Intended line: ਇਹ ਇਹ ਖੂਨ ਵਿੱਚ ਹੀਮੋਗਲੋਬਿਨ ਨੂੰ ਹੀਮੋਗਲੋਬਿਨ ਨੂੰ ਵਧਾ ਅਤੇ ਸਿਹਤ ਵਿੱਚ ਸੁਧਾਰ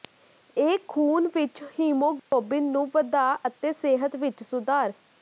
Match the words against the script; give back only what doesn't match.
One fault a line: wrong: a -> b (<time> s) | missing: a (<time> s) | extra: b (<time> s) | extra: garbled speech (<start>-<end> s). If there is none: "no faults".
missing: ਇਹ (0.8 s)
missing: ਹੀਮੋਗਲੋਬਿਨ ਨੂੰ (2.9 s)